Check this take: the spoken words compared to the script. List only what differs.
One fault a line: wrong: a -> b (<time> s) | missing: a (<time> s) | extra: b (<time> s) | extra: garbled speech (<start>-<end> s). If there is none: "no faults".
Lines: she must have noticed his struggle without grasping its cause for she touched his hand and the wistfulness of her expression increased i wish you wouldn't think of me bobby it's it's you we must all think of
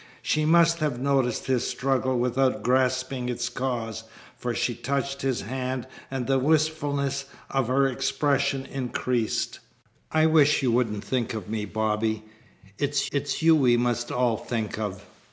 no faults